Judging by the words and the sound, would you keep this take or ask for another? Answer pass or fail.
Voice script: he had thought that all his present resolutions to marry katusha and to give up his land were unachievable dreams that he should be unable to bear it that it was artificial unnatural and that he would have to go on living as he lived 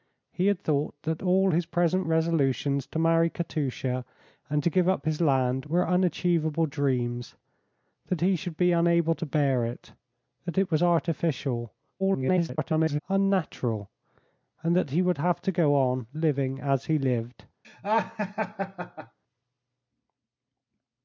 fail